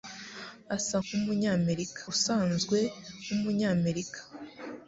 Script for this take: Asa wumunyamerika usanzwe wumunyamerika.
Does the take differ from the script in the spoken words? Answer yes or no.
no